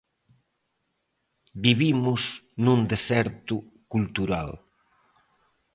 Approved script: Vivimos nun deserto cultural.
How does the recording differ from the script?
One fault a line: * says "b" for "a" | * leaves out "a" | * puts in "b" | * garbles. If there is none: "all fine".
all fine